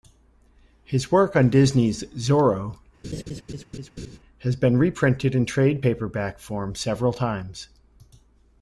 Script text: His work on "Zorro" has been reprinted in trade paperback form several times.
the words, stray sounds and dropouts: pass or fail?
fail